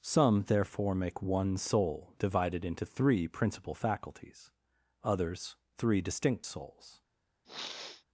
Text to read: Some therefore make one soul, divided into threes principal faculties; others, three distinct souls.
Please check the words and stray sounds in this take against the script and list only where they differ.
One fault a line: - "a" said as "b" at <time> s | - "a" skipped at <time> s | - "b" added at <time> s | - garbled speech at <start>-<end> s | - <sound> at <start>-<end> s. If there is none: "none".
- "threes" said as "three" at 2.9 s
- sniff at 7.4-8.0 s